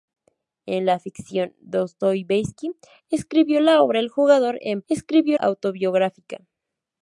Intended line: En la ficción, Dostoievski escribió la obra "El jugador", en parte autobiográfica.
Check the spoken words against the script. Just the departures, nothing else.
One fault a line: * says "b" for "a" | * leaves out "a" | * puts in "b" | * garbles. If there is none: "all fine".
* says "escribió" for "parte"